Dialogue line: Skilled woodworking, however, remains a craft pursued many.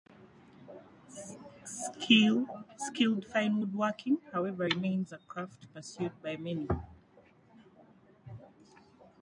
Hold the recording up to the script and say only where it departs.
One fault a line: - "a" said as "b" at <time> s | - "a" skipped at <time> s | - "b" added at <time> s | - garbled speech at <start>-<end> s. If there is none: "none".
- "fine" added at 3.2 s
- "by" added at 6.2 s